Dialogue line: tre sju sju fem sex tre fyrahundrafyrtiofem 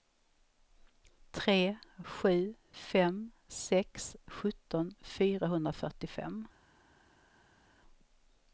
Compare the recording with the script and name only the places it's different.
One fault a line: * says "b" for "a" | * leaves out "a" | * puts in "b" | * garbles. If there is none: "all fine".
* leaves out "sju"
* says "sjutton" for "tre"